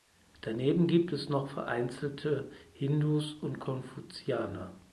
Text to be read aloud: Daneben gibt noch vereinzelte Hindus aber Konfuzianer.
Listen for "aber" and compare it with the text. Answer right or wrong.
wrong